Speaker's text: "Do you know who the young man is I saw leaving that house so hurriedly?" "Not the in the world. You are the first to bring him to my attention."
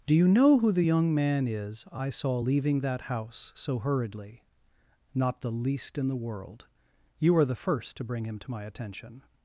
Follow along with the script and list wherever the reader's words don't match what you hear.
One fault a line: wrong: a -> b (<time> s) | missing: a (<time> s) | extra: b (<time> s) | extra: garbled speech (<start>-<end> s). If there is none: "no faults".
extra: least (5.5 s)